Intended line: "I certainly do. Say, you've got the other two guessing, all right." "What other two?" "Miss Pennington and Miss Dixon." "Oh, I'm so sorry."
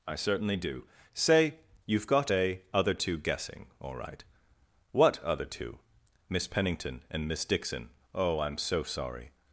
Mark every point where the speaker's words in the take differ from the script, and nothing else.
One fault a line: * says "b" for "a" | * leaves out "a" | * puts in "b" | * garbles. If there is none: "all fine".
* says "a" for "the"